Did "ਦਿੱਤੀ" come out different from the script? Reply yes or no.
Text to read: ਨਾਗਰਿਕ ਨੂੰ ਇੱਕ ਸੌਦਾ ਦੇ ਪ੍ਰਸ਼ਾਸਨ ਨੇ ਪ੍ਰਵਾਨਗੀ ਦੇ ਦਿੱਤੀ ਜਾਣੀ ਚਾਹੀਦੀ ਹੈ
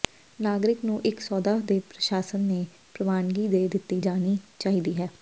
no